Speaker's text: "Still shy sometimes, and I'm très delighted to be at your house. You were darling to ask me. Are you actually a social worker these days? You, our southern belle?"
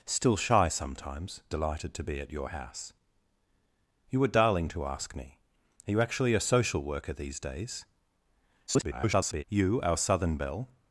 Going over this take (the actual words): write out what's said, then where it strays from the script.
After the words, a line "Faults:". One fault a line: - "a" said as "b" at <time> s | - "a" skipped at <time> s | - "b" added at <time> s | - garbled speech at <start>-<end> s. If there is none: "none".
"Still shy sometimes, delighted to be at your house. You were darling to ask me. Are you actually a social worker these days? [garbled] You, our southern belle?"
Faults:
- "and I'm très" skipped at 1.4 s
- garbled speech at 8.7-9.4 s